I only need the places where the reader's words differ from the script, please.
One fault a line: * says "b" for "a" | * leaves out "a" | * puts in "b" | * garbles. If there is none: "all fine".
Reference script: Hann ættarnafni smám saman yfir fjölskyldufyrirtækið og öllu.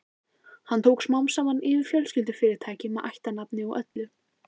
* says "tók" for "ættarnafni"
* puts in "með ættarnafni"